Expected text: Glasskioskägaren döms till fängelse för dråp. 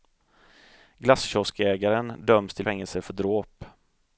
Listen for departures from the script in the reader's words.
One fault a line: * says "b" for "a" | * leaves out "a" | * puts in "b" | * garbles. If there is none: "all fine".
all fine